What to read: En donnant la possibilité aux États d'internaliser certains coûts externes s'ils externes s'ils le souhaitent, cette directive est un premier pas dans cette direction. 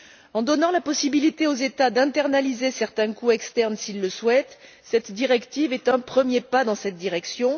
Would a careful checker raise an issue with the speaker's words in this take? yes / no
yes